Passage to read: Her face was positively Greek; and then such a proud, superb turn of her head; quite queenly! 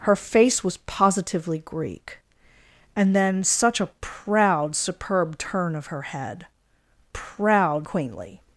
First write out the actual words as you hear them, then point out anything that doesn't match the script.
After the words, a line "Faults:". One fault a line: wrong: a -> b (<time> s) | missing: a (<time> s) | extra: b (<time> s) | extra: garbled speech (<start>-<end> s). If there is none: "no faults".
Her face was positively Greek; and then such a proud, superb turn of her head; proud queenly!
Faults:
wrong: quite -> proud (7.1 s)